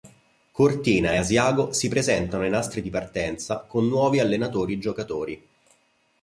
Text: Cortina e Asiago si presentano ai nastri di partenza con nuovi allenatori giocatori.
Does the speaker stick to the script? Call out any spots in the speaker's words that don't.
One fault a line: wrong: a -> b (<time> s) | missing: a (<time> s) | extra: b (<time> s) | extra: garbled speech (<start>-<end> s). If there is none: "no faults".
no faults